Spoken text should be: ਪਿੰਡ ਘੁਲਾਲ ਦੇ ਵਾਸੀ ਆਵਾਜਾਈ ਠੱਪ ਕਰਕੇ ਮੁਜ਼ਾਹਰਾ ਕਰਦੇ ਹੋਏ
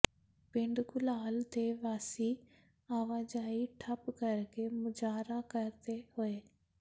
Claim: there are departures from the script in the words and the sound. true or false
false